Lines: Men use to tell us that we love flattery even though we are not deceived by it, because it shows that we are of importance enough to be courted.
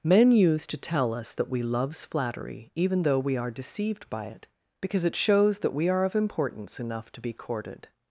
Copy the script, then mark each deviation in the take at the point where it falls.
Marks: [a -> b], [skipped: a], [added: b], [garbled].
Men use to tell us that we [love -> loves] flattery even though we are [skipped: not] deceived by it, because it shows that we are of importance enough to be courted.